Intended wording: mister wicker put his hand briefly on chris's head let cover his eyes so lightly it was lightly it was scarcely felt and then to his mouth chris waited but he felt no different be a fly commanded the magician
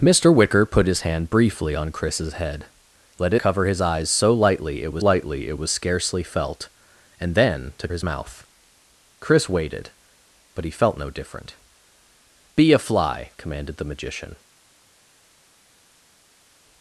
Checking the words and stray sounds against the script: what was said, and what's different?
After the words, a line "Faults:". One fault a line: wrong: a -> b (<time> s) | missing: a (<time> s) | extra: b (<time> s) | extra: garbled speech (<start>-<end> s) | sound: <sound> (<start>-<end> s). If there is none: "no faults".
mister wicker put his hand briefly on chris's head let cover his eyes so lightly it was lightly it was scarcely felt and then to his mouth chris waited but he felt no different be a fly commanded the magician
Faults:
no faults